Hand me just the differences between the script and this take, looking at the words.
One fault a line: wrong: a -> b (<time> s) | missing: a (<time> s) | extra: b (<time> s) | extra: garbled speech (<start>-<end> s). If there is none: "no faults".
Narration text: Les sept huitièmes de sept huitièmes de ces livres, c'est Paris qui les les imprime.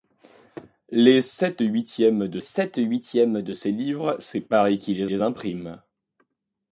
no faults